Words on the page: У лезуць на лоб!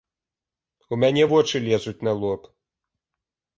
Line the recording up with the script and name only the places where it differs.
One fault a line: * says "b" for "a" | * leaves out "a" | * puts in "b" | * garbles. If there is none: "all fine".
* puts in "мяне вочы"